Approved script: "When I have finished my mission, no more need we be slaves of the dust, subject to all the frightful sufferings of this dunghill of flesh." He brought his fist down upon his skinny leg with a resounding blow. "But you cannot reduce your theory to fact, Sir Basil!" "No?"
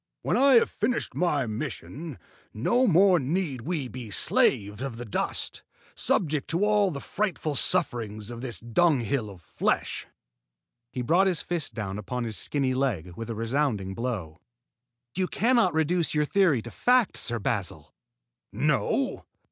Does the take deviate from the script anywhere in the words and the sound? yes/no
yes